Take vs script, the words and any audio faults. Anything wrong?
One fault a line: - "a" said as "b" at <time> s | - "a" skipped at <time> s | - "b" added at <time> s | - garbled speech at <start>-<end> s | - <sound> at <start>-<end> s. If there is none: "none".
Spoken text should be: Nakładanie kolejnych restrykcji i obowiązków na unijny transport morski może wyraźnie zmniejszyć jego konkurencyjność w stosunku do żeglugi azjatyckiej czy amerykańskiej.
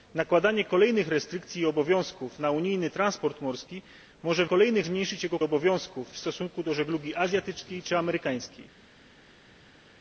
- "wyraźnie" said as "kolejnych" at 4.4 s
- "konkurencyjność" said as "obowiązków" at 5.4 s